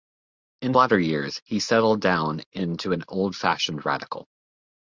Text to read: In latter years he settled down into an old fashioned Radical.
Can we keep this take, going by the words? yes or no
yes